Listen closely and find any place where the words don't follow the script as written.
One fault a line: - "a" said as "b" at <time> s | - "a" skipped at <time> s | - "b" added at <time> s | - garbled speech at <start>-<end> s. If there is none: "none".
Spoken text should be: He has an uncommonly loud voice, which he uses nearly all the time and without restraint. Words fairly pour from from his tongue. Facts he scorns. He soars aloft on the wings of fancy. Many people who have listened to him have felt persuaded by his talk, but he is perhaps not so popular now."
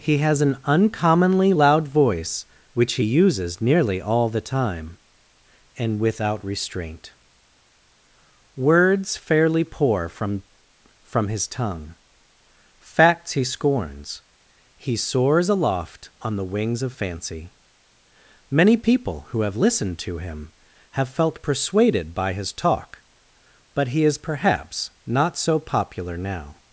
none